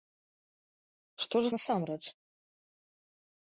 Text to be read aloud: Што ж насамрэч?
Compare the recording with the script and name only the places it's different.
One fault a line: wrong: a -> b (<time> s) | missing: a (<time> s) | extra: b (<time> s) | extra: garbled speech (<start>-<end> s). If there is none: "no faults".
no faults